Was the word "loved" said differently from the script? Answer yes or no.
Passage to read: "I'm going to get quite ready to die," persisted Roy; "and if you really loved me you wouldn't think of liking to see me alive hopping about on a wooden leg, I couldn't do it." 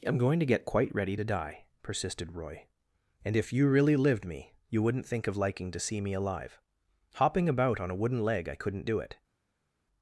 yes